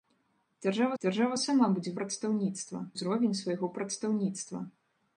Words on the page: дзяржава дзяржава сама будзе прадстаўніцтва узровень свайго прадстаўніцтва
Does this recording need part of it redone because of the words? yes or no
no